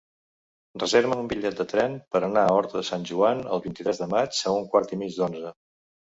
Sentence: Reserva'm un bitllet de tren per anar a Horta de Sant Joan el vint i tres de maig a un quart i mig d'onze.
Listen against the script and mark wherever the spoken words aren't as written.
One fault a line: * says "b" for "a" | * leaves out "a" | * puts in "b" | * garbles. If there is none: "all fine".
all fine